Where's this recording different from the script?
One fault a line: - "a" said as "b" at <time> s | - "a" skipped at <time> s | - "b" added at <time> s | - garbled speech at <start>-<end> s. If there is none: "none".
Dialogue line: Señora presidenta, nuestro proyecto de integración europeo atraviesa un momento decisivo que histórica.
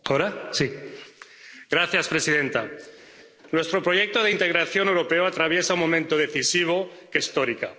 none